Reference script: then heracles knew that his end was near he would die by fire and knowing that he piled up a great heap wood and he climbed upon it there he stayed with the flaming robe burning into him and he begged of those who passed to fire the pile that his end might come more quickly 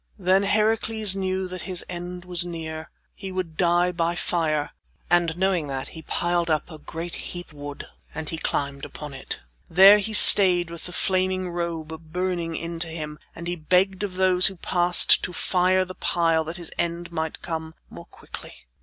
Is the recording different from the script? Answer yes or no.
no